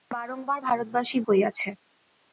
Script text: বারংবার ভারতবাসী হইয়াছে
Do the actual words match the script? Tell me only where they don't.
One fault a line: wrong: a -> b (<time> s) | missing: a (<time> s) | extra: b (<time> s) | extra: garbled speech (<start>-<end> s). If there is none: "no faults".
no faults